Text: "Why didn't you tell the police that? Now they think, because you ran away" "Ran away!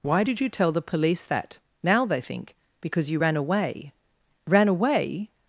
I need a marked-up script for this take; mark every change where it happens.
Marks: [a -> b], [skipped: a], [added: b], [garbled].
"Why [didn't -> did] you tell the police that? Now they think, because you ran away" "Ran away!